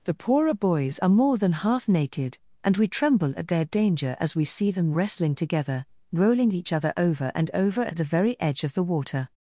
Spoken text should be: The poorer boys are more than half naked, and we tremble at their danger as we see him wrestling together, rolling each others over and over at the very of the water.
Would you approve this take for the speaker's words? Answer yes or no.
no